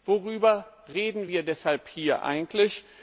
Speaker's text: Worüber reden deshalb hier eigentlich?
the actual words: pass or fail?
fail